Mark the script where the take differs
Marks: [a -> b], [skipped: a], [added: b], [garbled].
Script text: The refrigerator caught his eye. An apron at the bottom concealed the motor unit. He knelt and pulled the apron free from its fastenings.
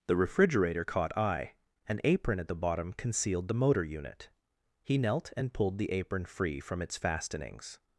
The refrigerator caught [skipped: his] eye. An apron at the bottom concealed the motor unit. He knelt and pulled the apron free from its fastenings.